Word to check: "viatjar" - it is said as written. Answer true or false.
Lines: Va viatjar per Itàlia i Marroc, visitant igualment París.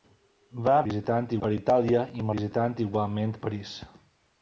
false